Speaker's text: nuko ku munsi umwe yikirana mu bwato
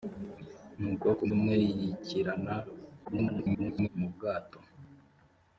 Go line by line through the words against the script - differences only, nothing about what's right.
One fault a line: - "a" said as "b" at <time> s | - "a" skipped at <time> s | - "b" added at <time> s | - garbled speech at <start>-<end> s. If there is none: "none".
- "munsi" skipped at 1.2 s
- garbled speech at 3.0-3.9 s